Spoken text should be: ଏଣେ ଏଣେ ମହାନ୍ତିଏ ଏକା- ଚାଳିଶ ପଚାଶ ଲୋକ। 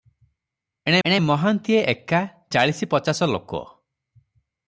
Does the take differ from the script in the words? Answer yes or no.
no